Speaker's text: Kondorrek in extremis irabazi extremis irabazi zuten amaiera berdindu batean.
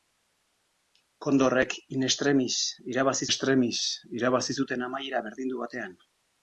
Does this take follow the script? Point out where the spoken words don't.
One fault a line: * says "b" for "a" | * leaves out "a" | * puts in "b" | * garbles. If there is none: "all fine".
all fine